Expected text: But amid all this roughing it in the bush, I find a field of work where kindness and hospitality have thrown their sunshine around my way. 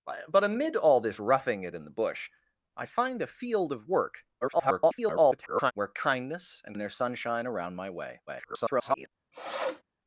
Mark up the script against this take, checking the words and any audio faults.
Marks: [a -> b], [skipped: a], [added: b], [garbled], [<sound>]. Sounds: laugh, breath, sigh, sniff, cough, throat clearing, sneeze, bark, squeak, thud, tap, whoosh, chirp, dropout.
But amid all this roughing it in the bush, I find a field of work [garbled] where kindness and [skipped: hospitality have thrown] their sunshine around my way. [garbled] [sniff]